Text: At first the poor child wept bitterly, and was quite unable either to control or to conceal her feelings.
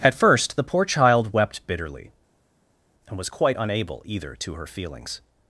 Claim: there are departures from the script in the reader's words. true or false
true